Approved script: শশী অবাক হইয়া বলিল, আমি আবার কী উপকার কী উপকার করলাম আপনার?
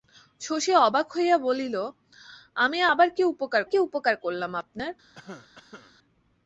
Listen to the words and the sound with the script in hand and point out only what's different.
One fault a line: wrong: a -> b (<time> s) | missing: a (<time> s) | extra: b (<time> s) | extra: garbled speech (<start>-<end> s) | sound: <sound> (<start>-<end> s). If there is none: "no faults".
sound: cough (5.2-6.0 s)